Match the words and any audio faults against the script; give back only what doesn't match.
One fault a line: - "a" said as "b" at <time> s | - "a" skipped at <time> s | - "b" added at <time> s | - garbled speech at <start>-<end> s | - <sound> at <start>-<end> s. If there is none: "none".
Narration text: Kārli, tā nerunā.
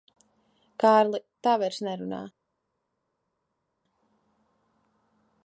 - "vairs" added at 1.6 s